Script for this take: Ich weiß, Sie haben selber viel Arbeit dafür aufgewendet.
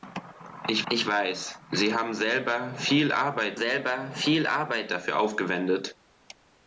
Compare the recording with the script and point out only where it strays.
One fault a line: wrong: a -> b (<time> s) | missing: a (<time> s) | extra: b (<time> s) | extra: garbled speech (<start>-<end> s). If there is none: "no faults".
extra: ich (0.9 s)
extra: selber viel Arbeit (3.5 s)